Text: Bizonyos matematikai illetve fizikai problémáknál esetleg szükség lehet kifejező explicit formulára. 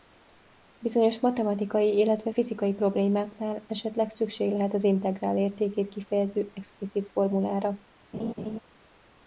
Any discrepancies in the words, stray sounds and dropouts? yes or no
yes